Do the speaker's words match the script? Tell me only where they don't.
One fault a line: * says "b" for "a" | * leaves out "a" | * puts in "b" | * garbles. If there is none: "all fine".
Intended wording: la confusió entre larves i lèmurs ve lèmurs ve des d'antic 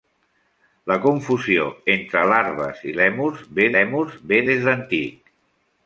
all fine